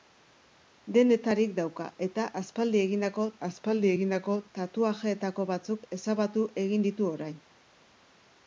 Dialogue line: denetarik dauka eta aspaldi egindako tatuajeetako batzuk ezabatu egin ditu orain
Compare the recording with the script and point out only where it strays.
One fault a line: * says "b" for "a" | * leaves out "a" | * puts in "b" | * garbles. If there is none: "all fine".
* puts in "aspaldi egindako"